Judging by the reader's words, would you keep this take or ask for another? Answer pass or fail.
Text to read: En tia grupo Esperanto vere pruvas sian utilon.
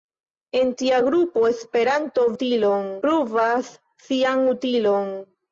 fail